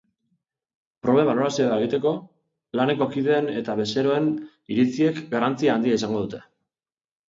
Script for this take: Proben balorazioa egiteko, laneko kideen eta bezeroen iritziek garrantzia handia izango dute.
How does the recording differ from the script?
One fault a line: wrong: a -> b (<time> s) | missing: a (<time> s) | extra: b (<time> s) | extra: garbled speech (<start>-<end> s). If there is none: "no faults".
no faults